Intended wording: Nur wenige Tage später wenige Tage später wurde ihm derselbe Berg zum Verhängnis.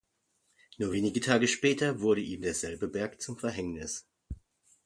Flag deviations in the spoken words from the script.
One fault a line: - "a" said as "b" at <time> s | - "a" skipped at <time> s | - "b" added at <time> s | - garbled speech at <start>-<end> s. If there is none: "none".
- "wenige Tage später" skipped at 2.0 s